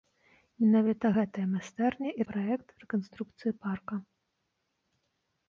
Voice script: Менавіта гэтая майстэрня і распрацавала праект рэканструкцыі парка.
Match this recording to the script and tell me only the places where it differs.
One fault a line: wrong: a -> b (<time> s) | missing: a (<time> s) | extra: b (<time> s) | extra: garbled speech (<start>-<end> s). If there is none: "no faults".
missing: распрацавала (2.3 s)